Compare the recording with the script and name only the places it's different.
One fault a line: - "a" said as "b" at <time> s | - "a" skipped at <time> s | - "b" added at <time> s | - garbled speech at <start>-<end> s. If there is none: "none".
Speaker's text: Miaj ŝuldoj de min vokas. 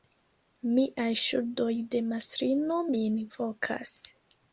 - "mastrino" added at 2.1 s